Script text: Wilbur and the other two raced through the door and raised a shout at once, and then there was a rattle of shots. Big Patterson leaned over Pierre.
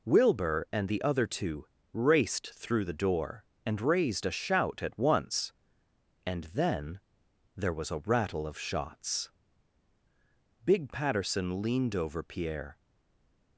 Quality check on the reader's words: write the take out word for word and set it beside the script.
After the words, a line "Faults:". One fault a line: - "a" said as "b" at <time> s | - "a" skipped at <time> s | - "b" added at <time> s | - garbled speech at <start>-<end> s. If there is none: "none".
Wilbur and the other two raced through the door and raised a shout at once, and then there was a rattle of shots. Big Patterson leaned over Pierre.
Faults:
none